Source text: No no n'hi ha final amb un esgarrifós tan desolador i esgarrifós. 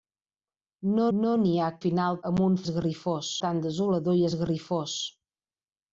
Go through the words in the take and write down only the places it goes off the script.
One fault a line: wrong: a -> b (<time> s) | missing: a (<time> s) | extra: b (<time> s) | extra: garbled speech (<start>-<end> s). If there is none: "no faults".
no faults